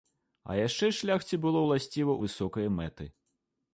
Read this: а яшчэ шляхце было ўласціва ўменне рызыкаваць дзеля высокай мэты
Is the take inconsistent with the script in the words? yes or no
yes